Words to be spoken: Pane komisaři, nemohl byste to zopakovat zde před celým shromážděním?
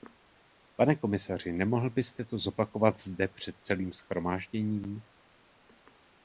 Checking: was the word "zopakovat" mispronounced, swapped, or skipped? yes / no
no